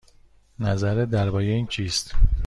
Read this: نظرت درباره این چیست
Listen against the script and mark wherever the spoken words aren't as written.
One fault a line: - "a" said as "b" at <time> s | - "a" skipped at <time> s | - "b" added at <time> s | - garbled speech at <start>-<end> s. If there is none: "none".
none